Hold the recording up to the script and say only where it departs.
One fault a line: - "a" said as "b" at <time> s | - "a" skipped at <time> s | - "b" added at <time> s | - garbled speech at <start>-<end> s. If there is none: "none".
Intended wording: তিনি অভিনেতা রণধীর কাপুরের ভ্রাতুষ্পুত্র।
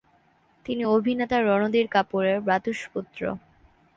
none